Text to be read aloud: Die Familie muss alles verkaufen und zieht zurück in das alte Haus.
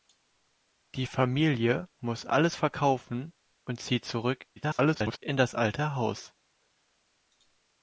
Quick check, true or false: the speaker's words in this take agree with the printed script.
false